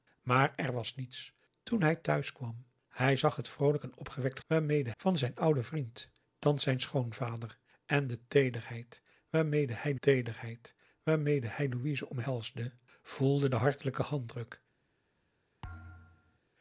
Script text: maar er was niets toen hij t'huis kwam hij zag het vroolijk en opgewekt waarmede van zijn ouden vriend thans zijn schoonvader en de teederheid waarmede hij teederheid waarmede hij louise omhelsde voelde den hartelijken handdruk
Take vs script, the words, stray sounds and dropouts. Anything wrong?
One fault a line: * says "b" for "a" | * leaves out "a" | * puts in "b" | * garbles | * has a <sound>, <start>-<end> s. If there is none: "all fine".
* has a thud, 15.6-16.4 s